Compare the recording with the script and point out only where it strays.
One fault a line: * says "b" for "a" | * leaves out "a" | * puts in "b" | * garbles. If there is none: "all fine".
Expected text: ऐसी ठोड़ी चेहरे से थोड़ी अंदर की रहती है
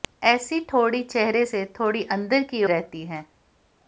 all fine